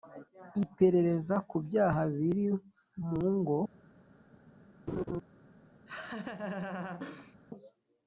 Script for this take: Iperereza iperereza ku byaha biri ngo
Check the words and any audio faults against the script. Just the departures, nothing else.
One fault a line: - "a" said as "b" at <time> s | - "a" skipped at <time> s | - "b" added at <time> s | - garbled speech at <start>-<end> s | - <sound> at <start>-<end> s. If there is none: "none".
- "iperereza" skipped at 1.4 s
- "mu" added at 3.1 s
- laugh at 4.9-5.2 s
- laugh at 5.9-7.4 s